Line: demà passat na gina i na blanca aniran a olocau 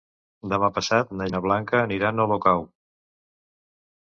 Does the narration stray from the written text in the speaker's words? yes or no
yes